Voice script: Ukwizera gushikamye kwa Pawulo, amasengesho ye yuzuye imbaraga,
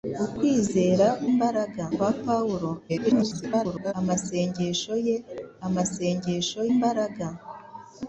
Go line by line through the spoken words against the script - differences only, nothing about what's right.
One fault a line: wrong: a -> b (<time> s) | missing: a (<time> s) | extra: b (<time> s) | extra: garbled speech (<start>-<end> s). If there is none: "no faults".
wrong: gushikamye -> imbaraga (1.3 s)
extra: garbled speech (2.9-3.9 s)
wrong: yuzuye -> amasengesho (5.7 s)